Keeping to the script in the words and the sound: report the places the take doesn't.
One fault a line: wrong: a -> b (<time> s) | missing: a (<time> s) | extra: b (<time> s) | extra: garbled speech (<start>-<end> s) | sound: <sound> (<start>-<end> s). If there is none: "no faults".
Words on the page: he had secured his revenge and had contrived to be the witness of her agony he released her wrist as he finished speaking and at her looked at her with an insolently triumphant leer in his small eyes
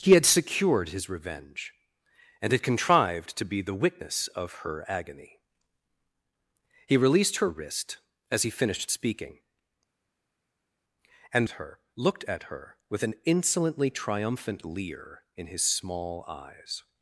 no faults